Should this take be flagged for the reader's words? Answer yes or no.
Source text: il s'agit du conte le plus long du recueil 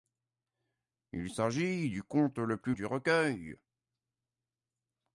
yes